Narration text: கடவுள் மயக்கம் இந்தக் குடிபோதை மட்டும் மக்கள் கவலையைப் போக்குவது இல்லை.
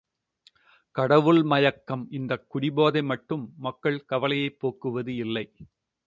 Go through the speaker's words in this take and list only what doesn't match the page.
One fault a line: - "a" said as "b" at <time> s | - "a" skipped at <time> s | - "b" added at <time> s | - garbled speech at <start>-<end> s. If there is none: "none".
none